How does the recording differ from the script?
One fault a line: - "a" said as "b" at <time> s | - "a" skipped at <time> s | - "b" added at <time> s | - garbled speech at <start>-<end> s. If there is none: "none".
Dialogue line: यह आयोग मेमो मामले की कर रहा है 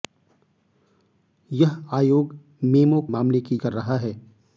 none